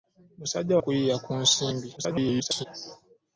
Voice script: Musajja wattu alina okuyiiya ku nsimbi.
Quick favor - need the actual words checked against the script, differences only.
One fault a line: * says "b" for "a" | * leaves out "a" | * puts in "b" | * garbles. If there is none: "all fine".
* leaves out "wattu alina"
* garbles